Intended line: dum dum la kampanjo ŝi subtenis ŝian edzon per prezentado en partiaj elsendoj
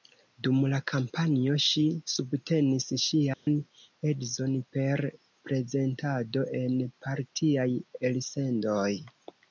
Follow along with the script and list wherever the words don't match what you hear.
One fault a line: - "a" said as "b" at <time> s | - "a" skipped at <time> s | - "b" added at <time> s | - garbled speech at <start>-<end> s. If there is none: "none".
- "dum" skipped at 0.6 s